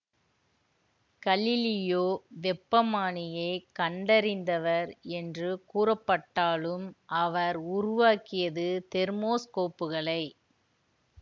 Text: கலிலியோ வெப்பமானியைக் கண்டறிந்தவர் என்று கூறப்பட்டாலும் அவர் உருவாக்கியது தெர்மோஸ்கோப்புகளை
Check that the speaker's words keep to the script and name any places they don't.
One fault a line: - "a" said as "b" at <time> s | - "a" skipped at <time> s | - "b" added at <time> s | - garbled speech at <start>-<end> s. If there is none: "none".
none